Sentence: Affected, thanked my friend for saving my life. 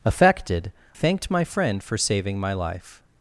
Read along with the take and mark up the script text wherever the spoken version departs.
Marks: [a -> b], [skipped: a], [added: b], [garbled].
Affected, thanked my friend for saving my life.